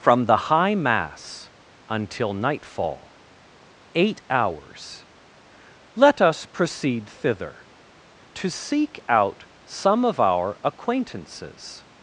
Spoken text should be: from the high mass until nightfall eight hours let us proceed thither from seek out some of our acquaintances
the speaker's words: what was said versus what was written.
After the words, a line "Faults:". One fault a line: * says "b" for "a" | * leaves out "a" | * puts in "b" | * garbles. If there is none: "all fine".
from the high mass until nightfall eight hours let us proceed thither to seek out some of our acquaintances
Faults:
* says "to" for "from"